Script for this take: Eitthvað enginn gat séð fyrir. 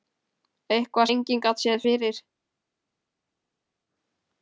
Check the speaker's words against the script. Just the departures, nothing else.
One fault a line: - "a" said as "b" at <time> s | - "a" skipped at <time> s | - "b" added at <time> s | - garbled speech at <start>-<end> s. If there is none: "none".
none